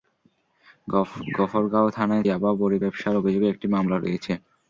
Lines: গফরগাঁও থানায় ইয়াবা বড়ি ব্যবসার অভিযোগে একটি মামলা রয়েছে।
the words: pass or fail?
pass